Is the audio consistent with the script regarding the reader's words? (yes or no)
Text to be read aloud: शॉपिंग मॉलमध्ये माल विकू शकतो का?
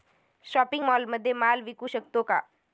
yes